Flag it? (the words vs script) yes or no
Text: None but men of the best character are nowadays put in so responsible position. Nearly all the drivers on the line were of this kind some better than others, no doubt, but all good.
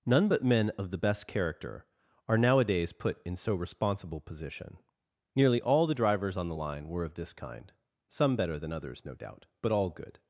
no